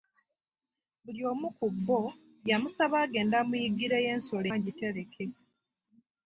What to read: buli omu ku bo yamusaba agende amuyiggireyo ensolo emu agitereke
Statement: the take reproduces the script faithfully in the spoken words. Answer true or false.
false